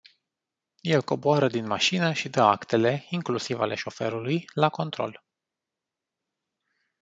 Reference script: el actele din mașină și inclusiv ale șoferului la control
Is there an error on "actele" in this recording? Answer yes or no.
yes